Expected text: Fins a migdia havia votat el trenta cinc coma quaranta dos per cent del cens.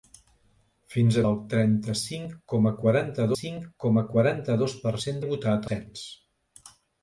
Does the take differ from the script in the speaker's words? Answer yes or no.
yes